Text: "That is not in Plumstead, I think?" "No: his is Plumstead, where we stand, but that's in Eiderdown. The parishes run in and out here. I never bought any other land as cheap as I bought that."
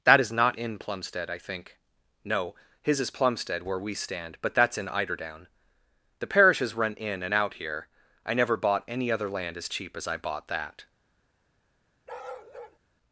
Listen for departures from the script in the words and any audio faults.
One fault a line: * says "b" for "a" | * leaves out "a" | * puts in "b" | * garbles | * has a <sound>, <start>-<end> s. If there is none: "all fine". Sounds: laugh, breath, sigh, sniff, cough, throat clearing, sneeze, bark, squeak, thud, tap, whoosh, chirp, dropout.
* has a bark, 12.1-12.8 s